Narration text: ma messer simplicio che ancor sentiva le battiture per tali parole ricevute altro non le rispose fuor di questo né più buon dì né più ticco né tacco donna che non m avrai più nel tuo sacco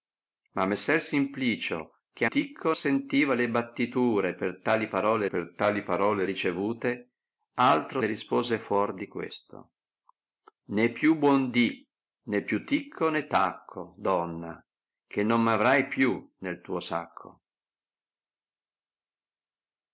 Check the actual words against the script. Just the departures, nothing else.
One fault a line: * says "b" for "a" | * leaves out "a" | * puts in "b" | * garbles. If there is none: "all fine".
* says "ticco" for "ancor"
* puts in "per tali parole"
* leaves out "non"